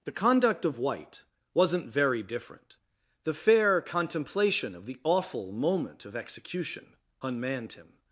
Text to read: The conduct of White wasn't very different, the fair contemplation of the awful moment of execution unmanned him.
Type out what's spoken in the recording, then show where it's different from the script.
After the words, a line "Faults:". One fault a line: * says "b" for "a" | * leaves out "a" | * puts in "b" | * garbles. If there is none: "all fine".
The conduct of White wasn't very different, the fair contemplation of the awful moment of execution unmanned him.
Faults:
all fine